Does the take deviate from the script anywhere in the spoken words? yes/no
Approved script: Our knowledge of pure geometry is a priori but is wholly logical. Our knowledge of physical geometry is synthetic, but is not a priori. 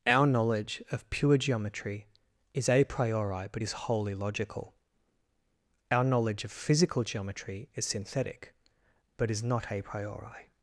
no